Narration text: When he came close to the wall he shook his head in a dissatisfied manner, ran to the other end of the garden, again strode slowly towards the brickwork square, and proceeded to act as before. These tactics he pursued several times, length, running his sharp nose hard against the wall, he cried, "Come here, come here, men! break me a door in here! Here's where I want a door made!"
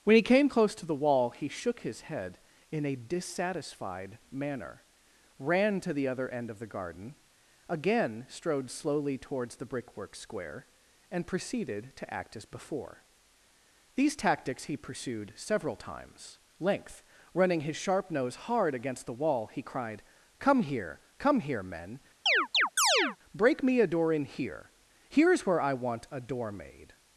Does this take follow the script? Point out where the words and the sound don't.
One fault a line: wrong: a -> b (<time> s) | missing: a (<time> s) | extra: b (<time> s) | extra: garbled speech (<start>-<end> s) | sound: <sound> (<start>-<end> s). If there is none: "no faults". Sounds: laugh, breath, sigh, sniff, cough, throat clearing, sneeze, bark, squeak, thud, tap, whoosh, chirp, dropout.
sound: chirp (22.3-23.2 s)